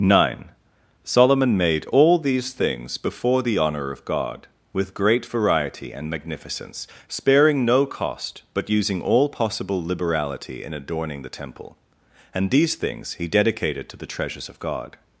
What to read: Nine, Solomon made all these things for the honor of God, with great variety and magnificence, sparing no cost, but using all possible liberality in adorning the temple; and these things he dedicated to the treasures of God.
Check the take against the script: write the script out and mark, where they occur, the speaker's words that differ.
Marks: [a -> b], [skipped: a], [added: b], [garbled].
Nine, Solomon made all these things [for -> before] the honor of God, with great variety and magnificence, sparing no cost, but using all possible liberality in adorning the temple; and these things he dedicated to the treasures of God.